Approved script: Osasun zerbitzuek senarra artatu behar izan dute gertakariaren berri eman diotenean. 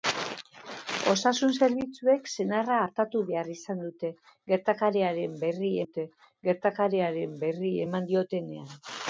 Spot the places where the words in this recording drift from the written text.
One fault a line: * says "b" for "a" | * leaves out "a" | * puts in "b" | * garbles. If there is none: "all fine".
* puts in "dute gertakariaren berri"